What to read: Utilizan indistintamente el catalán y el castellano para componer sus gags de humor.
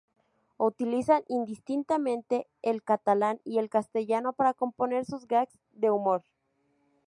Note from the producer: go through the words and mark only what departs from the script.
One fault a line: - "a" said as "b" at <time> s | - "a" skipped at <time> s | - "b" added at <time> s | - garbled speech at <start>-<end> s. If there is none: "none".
none